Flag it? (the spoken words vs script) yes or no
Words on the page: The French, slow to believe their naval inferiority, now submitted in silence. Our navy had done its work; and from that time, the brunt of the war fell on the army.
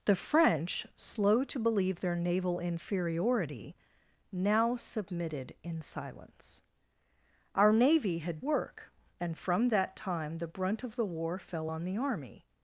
yes